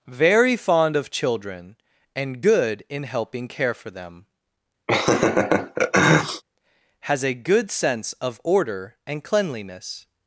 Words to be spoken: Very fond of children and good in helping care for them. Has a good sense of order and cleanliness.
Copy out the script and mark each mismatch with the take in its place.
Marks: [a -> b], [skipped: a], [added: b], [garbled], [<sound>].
Very fond of children and good in helping care for them. [laugh] Has a good sense of order and cleanliness.